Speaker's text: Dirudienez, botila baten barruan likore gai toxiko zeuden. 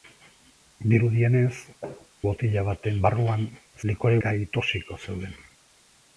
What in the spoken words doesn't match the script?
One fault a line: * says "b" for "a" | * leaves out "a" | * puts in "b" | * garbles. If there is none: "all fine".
all fine